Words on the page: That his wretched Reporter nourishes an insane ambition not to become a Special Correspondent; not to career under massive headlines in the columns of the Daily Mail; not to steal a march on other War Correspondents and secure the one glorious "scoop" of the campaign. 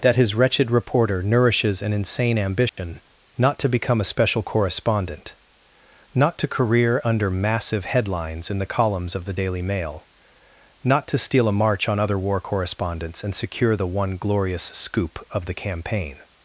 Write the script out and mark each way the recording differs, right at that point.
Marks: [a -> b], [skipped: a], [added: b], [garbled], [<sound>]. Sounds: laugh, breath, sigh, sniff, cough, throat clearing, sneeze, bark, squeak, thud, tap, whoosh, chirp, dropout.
That his wretched Reporter nourishes an insane ambition [dropout] not to become a Special Correspondent; not to career under massive headlines in the columns of the Daily Mail; not to steal a march on other War Correspondents and secure the one glorious "scoop" of the campaign.